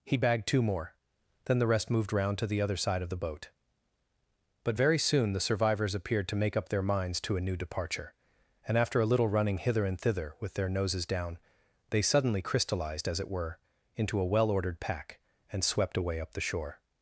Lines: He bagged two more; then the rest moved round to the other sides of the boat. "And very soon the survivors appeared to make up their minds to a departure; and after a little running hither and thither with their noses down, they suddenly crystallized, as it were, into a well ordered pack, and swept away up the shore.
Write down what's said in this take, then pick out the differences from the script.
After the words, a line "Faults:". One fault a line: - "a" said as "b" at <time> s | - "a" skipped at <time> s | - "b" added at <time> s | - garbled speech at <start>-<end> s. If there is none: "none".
He bagged two more; then the rest moved round to the other side of the boat. "But very soon the survivors appeared to make up their minds to a new departure; and after a little running hither and thither with their noses down, they suddenly crystallized, as it were, into a well ordered pack, and swept away up the shore.
Faults:
- "sides" said as "side" at 2.8 s
- "And" said as "But" at 4.6 s
- "new" added at 7.4 s